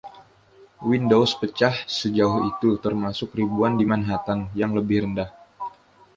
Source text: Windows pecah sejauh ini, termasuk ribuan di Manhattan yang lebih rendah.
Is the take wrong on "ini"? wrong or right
wrong